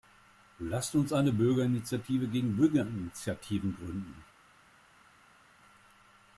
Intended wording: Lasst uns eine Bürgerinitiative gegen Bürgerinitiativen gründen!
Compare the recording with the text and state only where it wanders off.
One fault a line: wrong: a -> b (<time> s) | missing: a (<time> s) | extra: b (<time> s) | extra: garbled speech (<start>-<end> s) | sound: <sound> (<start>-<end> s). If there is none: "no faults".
no faults